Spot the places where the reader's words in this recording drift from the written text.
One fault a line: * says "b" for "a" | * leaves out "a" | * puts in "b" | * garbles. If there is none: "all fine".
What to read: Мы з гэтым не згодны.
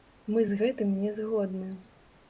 all fine